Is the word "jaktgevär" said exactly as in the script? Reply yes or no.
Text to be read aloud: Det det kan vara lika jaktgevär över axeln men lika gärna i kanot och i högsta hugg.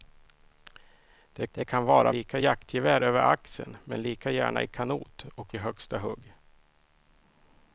yes